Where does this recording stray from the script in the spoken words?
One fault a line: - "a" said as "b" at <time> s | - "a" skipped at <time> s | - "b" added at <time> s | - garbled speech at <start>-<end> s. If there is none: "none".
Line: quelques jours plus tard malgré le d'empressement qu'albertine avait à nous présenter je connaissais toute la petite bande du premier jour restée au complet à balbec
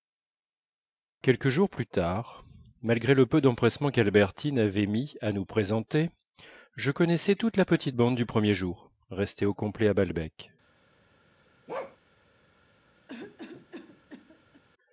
- "peu" added at 3.3 s
- "mis" added at 4.9 s